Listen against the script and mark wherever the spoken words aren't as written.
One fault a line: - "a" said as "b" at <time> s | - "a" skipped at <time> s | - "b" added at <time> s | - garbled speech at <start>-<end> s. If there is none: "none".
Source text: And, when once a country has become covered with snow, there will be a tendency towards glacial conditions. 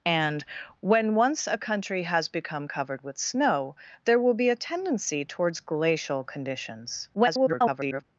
- garbled speech at 7.1-8.0 s